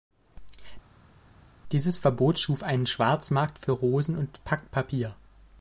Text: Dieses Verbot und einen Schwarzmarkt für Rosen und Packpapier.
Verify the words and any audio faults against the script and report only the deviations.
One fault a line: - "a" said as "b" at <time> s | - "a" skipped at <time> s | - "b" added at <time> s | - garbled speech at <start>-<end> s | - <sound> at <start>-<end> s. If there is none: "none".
- "und" said as "schuf" at 2.4 s